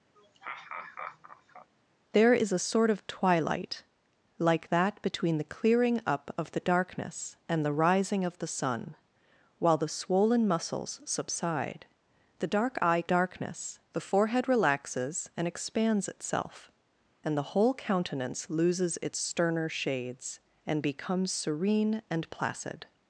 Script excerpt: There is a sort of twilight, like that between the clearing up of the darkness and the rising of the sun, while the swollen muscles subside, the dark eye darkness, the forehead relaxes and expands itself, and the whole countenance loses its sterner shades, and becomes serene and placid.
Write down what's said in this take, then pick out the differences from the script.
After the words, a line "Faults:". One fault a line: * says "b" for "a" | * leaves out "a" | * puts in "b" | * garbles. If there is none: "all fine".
There is a sort of twilight, like that between the clearing up of the darkness and the rising of the sun, while the swollen muscles subside, the dark eye darkness, the forehead relaxes and expands itself, and the whole countenance loses its sterner shades, and becomes serene and placid.
Faults:
all fine